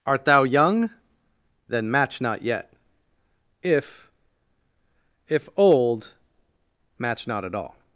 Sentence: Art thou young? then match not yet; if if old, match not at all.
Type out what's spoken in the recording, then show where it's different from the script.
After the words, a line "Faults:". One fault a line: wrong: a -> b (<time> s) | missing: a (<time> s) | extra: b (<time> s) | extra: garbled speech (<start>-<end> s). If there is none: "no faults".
Art thou young? then match not yet; if if old, match not at all.
Faults:
no faults